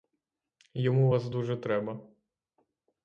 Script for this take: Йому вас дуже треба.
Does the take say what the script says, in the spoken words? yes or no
yes